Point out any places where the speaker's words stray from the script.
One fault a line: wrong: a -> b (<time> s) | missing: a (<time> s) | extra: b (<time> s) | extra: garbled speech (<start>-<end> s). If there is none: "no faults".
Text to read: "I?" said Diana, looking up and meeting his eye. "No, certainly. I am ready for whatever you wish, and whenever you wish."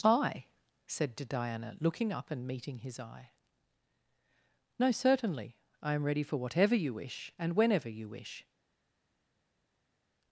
no faults